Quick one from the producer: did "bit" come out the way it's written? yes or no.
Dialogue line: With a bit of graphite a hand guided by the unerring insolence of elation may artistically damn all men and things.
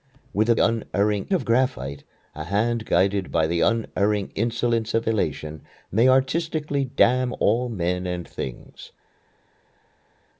no